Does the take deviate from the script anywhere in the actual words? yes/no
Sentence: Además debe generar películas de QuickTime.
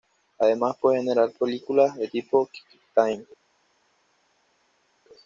yes